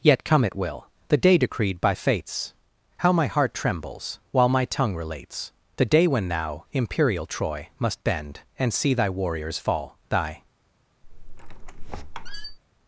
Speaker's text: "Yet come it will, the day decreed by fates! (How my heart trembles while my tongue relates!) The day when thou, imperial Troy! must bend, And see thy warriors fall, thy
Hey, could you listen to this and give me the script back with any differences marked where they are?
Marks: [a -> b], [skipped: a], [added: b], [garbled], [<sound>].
"Yet come it will, the day decreed by fates! (How my heart trembles while my tongue relates!) The day when thou, imperial Troy! must bend, And see thy warriors fall, thy [squeak]